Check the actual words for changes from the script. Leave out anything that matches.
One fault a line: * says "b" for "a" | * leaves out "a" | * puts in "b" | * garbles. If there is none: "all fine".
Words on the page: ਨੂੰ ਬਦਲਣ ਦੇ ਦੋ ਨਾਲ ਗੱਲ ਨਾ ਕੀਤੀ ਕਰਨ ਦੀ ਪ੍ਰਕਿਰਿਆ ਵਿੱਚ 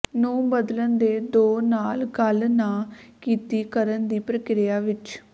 all fine